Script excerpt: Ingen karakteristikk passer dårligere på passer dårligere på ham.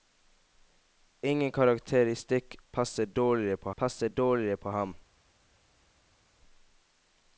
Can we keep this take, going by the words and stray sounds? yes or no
yes